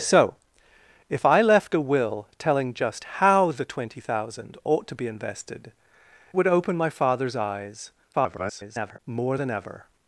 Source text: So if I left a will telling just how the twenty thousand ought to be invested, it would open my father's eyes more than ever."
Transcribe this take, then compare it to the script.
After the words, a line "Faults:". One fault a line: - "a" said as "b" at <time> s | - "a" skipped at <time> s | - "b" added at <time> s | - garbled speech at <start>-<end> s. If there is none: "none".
So if I left a will telling just how the twenty thousand ought to be invested, would open my father's eyes [garbled] more than ever."
Faults:
- "it" skipped at 5.7 s
- garbled speech at 8.1-9.0 s